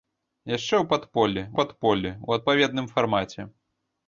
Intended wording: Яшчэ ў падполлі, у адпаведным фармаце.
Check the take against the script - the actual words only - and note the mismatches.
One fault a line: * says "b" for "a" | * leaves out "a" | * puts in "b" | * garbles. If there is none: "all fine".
* puts in "падполлі"